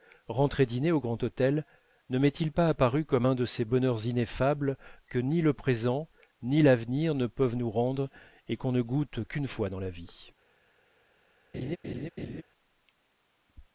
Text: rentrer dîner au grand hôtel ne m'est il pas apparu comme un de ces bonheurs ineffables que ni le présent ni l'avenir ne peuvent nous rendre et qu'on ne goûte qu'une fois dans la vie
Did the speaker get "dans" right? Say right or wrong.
right